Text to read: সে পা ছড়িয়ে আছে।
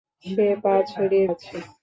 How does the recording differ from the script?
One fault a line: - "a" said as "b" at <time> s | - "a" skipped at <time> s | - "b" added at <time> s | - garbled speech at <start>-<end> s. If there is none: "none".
none